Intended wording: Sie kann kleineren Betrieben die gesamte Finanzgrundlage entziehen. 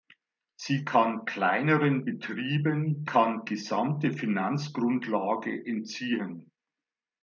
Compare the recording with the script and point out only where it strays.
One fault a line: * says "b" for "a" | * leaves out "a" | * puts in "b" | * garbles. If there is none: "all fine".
* says "kann" for "die"